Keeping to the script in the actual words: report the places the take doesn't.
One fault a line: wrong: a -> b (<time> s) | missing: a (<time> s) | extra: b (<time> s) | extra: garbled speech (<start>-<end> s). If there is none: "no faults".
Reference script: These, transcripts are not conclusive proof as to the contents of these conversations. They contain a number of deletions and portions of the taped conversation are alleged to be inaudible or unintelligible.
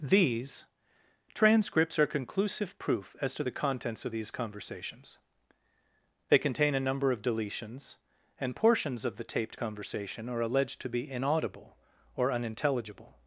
missing: not (2.1 s)